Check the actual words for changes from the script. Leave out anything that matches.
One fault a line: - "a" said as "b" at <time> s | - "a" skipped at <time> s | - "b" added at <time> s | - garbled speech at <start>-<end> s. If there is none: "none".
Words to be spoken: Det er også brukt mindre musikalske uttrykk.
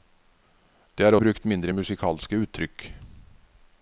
- "også" skipped at 1.1 s